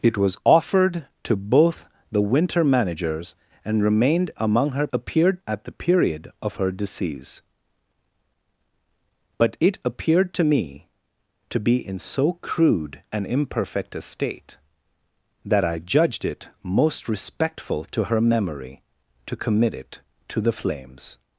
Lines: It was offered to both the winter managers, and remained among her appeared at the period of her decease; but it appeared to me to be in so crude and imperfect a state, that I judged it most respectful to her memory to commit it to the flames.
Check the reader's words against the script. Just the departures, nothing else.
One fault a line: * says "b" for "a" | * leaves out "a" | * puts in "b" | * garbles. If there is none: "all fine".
all fine